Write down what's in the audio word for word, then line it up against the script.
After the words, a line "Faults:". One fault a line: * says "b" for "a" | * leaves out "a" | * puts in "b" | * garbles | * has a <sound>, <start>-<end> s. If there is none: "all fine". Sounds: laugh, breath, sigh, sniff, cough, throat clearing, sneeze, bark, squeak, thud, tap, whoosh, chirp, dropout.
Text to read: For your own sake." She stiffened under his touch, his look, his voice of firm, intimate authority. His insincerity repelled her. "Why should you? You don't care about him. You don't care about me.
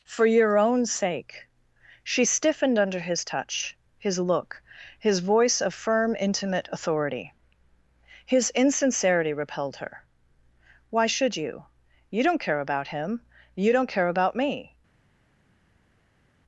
For your own sake." She stiffened under his touch, his look, his voice of firm, intimate authority. His insincerity repelled her. "Why should you? You don't care about him. You don't care about me.
Faults:
all fine